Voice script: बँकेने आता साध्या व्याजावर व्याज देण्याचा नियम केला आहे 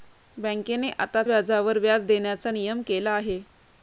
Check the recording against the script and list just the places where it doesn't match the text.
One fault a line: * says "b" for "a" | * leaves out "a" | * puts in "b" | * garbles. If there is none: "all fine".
* leaves out "साध्या"